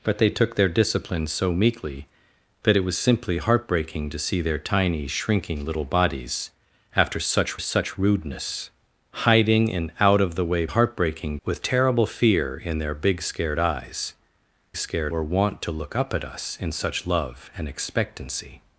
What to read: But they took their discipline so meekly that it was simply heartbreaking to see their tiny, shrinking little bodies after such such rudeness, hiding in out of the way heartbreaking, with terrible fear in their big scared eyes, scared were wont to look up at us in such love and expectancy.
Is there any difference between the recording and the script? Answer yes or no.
no